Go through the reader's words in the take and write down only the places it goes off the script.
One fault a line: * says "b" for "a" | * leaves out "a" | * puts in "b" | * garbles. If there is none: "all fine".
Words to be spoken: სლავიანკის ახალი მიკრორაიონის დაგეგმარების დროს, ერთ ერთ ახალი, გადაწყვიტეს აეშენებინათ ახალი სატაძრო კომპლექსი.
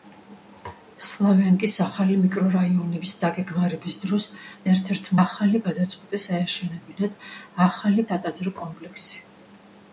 all fine